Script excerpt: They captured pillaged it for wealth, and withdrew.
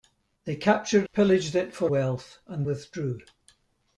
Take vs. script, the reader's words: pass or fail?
pass